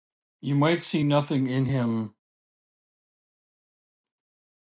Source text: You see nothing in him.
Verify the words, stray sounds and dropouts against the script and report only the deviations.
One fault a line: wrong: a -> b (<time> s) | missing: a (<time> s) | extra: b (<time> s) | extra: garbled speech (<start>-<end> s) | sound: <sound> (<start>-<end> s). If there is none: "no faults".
extra: might (0.6 s)